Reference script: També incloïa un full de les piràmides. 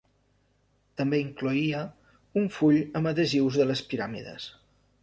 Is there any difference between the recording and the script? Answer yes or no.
yes